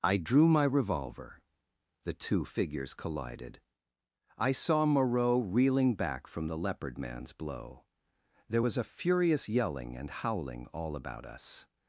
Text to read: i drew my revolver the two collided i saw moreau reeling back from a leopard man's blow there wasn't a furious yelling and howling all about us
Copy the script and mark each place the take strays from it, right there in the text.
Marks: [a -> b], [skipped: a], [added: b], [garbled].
i drew my revolver the two [added: figures] collided i saw moreau reeling back from [a -> the] leopard man's blow there [wasn't -> was] a furious yelling and howling all about us